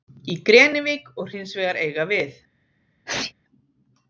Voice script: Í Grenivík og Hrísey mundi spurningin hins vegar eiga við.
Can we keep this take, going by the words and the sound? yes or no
no